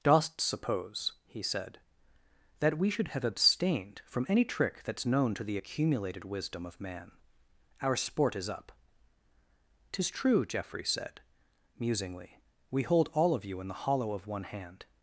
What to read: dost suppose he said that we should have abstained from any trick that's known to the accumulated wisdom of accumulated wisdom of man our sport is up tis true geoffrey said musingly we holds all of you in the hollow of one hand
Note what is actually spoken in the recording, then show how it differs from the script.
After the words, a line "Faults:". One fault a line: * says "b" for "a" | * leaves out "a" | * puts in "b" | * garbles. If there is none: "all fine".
dost suppose he said that we should have abstained from any trick that's known to the accumulated wisdom of man our sport is up tis true geoffrey said musingly we hold all of you in the hollow of one hand
Faults:
* leaves out "accumulated wisdom of"
* says "hold" for "holds"